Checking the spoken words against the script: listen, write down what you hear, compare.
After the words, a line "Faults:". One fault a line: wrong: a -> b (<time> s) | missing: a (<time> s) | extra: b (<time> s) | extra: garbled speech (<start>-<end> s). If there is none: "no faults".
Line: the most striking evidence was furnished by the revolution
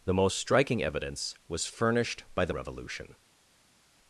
the most striking evidence was furnished by the revolution
Faults:
no faults